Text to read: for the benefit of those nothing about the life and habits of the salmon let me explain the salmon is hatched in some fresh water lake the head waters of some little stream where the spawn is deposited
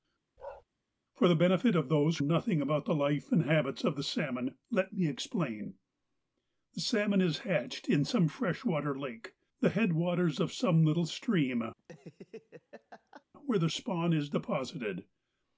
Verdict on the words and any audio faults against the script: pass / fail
fail